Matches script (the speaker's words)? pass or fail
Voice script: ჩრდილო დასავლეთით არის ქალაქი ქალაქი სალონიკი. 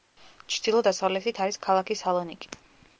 fail